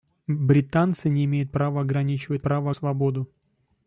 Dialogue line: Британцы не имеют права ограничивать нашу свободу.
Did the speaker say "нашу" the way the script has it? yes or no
no